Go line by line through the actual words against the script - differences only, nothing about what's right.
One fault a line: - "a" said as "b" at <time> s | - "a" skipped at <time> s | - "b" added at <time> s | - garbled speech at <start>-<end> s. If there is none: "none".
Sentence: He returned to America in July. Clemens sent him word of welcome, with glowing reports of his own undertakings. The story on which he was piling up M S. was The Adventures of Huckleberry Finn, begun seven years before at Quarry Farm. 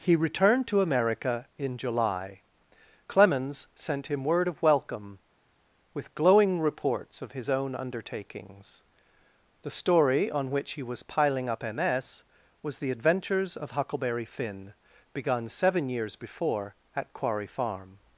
none